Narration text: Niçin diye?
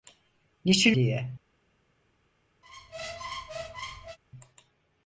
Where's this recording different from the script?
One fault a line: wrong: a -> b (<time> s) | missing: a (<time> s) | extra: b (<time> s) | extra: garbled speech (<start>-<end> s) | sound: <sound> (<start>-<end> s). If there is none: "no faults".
sound: squeak (2.6-4.2 s)